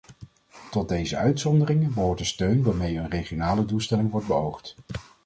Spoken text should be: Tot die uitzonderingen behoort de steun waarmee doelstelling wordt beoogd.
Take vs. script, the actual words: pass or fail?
fail